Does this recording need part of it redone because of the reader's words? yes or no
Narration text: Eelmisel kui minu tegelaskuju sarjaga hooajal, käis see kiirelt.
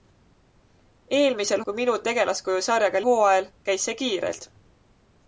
no